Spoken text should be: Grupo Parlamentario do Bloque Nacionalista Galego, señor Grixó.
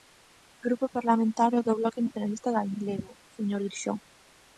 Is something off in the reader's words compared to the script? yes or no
no